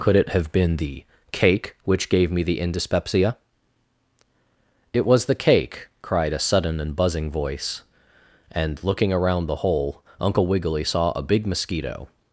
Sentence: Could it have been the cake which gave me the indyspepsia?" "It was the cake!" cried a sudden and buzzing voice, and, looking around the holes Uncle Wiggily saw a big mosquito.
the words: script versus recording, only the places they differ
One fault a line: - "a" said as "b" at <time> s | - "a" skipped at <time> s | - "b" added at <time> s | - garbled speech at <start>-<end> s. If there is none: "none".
- "holes" said as "hole" at 9.6 s